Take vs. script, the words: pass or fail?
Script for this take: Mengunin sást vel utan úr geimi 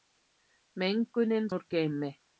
fail